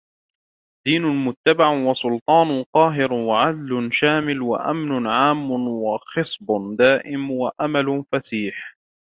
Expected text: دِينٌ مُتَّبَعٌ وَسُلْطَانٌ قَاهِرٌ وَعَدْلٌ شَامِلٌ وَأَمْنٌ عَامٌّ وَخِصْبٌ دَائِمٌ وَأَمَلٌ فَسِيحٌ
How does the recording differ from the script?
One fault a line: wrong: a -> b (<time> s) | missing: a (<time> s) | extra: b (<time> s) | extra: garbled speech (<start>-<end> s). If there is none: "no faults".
no faults